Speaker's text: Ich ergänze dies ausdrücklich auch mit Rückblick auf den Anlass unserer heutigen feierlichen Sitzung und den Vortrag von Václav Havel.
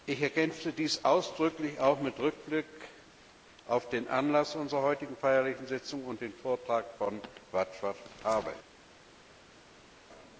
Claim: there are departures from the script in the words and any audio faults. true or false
false